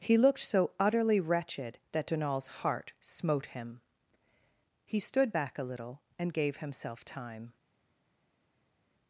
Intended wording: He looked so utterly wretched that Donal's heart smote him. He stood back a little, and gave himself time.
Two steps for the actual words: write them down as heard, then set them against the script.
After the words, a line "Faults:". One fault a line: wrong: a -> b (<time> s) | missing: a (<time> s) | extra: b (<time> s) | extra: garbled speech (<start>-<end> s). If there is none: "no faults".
He looked so utterly wretched that Donal's heart smote him. He stood back a little, and gave himself time.
Faults:
no faults